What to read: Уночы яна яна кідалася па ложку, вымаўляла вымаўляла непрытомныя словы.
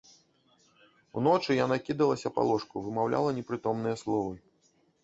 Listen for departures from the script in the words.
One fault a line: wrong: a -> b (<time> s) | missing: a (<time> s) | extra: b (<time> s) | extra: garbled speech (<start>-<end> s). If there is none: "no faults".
missing: яна (1.8 s)
missing: вымаўляла (3.3 s)